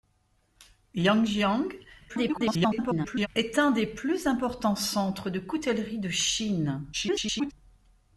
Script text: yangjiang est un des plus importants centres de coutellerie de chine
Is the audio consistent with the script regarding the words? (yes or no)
no